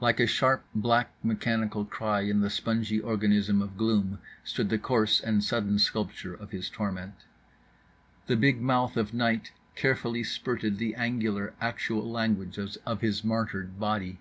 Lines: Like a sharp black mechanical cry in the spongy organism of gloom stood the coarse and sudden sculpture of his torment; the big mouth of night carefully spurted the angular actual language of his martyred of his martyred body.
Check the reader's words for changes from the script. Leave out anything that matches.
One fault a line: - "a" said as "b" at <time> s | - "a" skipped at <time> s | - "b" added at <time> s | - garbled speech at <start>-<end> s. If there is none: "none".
- "of his martyred" skipped at 13.8 s